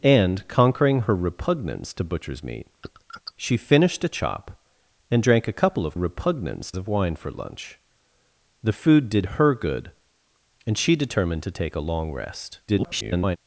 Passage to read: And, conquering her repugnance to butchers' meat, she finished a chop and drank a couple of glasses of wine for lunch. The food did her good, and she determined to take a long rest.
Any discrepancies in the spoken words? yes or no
yes